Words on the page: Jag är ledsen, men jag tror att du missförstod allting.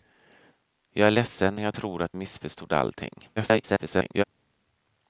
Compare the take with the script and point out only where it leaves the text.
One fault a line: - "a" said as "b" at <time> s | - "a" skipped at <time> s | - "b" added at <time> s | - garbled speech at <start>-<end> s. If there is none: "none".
- "men" skipped at 1.6 s
- "du" skipped at 2.1 s
- garbled speech at 3.4-4.2 s